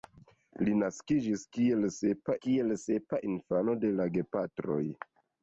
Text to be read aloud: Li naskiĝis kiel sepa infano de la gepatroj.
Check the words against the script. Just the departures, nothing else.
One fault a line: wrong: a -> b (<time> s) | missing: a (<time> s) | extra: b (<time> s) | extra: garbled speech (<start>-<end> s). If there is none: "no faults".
extra: kiel sepa (2.5 s)